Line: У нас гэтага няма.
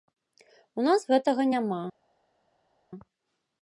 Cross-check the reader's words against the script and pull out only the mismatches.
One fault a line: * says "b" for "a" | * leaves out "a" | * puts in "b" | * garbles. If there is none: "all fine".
all fine